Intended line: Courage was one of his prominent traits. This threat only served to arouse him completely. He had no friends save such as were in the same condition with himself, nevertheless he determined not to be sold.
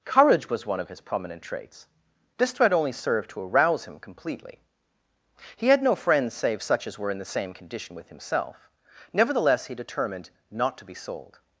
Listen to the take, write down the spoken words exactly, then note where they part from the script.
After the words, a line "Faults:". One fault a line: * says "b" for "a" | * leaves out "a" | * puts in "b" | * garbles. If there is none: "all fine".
Courage was one of his prominent traits. This threat only served to arouse him completely. He had no friends save such as were in the same condition with himself, nevertheless he determined not to be sold.
Faults:
all fine